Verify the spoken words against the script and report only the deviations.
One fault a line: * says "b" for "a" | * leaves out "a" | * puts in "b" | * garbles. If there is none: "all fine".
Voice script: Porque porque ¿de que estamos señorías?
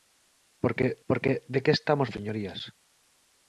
all fine